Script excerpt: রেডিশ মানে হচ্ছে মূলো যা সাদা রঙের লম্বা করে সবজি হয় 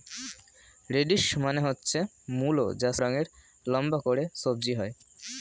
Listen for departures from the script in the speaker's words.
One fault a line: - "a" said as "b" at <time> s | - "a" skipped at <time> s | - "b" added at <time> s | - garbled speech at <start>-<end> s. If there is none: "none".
- "সাদা" skipped at 2.9 s